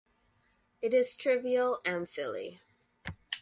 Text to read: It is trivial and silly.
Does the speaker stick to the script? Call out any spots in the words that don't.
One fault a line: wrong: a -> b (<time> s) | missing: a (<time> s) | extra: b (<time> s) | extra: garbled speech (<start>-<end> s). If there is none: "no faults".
no faults